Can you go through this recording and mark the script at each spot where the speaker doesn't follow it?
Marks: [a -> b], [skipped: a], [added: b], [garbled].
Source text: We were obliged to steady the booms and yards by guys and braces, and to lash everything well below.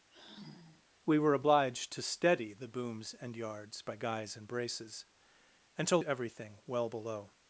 We were obliged to steady the booms and yards by guys and braces, and to [skipped: lash] everything well below.